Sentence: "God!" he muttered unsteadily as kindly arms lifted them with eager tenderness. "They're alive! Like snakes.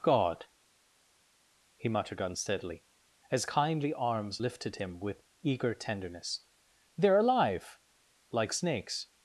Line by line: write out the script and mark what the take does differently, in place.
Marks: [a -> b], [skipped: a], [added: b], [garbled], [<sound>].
"God!" he muttered unsteadily as kindly arms lifted [them -> him] with eager tenderness. "They're alive! Like snakes.